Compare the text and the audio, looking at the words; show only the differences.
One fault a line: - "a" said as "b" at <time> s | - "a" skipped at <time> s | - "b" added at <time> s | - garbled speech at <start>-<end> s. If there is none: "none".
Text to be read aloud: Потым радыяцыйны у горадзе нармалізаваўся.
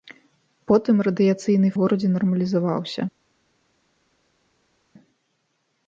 none